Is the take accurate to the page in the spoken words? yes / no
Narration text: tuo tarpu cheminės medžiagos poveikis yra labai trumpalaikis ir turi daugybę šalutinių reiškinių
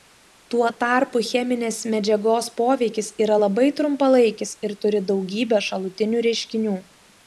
yes